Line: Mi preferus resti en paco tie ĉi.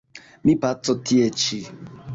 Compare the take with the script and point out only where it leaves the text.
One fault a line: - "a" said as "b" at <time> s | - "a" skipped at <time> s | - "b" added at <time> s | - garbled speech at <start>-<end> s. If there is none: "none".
- "preferus resti en" skipped at 0.6 s